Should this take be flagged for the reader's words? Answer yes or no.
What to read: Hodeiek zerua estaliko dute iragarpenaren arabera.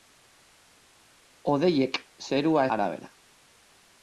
yes